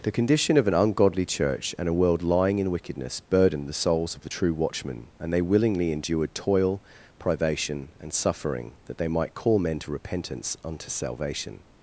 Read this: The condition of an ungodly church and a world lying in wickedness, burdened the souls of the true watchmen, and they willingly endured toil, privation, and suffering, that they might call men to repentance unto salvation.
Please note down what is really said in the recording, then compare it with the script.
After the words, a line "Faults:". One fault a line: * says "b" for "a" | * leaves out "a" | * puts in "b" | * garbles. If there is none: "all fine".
The condition of an ungodly church and a world lying in wickedness, burdened the souls of the true watchmen, and they willingly endured toil, privation, and suffering, that they might call men to repentance unto salvation.
Faults:
all fine